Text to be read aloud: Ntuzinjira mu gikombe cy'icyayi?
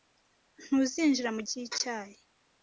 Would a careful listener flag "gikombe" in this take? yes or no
yes